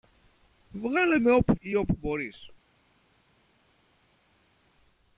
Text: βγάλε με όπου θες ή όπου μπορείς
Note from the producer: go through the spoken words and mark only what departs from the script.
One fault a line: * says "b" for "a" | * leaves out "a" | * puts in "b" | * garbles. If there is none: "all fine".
* leaves out "θες"